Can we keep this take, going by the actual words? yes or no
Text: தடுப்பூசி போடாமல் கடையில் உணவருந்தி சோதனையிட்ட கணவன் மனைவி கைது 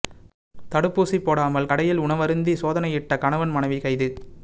yes